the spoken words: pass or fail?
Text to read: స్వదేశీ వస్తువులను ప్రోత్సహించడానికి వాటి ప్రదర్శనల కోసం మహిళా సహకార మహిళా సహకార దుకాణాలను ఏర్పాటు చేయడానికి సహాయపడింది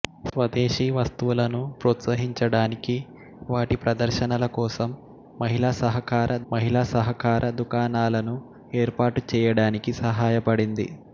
pass